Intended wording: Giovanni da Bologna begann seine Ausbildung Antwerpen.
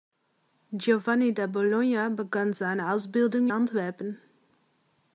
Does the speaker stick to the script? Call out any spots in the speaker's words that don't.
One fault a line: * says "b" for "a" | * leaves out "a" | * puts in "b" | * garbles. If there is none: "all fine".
all fine